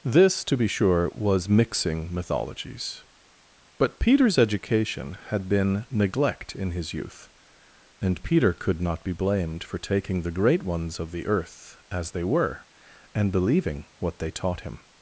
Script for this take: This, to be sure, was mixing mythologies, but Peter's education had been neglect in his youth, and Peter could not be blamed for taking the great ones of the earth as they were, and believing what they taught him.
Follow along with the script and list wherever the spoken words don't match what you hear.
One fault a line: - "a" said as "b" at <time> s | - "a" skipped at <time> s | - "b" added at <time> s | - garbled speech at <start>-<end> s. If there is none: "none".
none